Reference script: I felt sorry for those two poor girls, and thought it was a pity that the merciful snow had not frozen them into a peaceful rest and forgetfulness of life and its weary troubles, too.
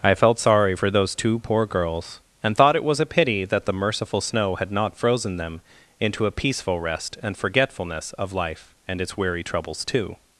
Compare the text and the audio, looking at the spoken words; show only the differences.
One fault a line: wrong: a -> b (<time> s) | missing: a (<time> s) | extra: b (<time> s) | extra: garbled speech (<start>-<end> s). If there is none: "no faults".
no faults